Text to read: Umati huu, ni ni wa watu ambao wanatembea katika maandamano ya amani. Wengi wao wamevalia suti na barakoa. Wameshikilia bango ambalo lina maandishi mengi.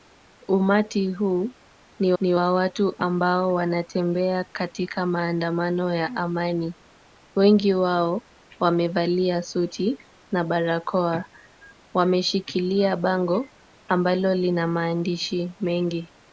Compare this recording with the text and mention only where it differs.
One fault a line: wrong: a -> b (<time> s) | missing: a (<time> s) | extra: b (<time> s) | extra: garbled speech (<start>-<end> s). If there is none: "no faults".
no faults